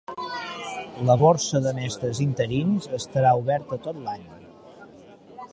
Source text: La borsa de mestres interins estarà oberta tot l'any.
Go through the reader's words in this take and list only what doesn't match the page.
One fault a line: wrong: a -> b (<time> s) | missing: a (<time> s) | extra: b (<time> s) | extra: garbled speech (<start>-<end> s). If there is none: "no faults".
no faults